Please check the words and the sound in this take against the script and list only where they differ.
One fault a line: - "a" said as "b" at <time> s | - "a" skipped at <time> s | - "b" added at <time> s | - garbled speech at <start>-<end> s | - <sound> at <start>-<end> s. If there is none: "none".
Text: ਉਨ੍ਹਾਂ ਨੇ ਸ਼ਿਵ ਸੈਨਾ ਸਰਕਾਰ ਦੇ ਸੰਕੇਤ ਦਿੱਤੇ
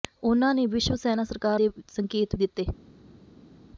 none